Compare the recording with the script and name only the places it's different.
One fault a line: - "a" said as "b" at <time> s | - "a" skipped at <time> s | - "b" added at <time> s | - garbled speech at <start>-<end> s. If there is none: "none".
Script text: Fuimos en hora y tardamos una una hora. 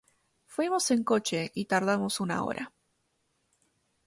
- "hora" said as "coche" at 1.0 s
- "una" skipped at 2.4 s